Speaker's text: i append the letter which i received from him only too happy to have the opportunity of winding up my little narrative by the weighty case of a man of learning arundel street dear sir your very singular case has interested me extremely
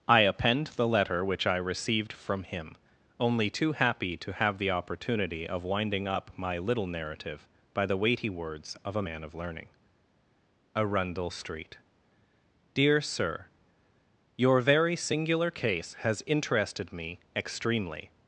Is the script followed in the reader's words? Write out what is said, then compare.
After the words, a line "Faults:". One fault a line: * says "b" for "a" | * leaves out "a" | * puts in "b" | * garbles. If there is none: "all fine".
i append the letter which i received from him only too happy to have the opportunity of winding up my little narrative by the weighty words of a man of learning arundel street dear sir your very singular case has interested me extremely
Faults:
* says "words" for "case"